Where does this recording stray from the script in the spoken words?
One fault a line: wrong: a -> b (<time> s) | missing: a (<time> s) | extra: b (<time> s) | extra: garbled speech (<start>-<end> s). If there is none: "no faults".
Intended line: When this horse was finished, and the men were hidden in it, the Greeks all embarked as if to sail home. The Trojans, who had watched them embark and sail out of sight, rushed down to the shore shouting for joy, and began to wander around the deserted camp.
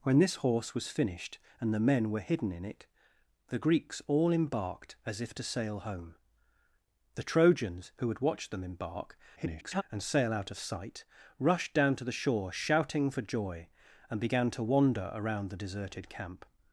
extra: garbled speech (9.4-9.8 s)